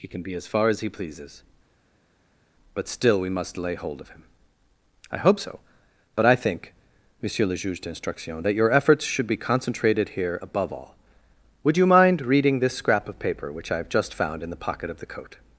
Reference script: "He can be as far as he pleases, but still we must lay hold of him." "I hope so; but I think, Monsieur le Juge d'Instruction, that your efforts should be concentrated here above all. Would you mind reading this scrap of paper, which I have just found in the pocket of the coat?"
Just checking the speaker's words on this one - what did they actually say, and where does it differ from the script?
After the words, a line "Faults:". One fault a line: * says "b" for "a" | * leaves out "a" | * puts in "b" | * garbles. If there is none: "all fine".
"He can be as far as he pleases, but still we must lay hold of him." "I hope so; but I think, Monsieur le Juge d'Instruction, that your efforts should be concentrated here above all. Would you mind reading this scrap of paper, which I have just found in the pocket of the coat?"
Faults:
all fine